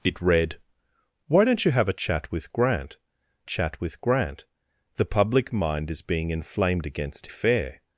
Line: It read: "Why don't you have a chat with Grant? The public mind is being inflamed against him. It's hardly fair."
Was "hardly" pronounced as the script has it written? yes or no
no